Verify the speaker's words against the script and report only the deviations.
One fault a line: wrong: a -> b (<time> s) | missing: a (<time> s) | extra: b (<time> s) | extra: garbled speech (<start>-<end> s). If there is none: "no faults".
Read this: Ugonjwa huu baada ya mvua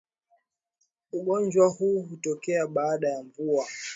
extra: hutokea (2.0 s)